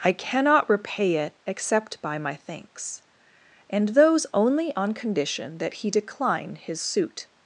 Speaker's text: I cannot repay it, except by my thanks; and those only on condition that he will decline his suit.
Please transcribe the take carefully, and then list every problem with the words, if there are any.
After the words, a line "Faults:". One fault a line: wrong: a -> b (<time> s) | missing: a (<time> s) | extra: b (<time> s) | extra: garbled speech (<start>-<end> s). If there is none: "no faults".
I cannot repay it, except by my thanks; and those only on condition that he decline his suit.
Faults:
missing: will (5.9 s)